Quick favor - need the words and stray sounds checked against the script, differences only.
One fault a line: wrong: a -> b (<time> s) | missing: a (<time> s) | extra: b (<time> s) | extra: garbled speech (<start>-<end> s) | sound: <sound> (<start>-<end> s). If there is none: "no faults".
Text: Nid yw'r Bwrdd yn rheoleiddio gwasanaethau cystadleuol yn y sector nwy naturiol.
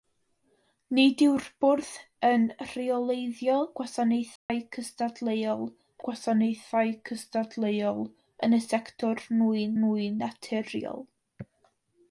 sound: dropout (4.4-4.5 s)
extra: gwasanaethau cystadleuol (6.1 s)
extra: nwy (9.8 s)